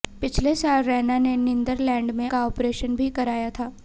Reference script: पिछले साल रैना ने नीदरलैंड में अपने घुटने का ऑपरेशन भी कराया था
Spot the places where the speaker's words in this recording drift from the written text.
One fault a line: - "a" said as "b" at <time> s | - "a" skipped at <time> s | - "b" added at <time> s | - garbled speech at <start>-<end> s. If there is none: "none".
- "अपने घुटने" skipped at 2.3 s